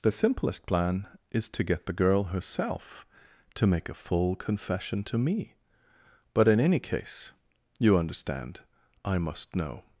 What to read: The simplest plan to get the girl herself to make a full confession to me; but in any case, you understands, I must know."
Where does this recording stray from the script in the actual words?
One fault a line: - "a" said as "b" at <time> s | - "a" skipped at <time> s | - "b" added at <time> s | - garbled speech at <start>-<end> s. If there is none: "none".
- "is" added at 1.3 s
- "understands" said as "understand" at 8.0 s